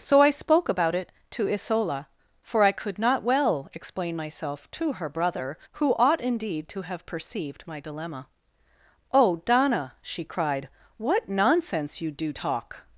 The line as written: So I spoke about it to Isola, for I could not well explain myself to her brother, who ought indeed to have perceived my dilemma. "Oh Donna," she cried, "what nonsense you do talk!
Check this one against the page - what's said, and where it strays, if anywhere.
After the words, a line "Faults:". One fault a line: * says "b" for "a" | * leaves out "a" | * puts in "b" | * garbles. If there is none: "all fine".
So I spoke about it to Isola, for I could not well explain myself to her brother, who ought indeed to have perceived my dilemma. "Oh Donna," she cried, "what nonsense you do talk!
Faults:
all fine